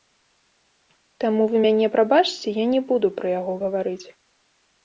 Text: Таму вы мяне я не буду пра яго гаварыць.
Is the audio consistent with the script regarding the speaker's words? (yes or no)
no